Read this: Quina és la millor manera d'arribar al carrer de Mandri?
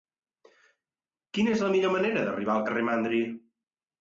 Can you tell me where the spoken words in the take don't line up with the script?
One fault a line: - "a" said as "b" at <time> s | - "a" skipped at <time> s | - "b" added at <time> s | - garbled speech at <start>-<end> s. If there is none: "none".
none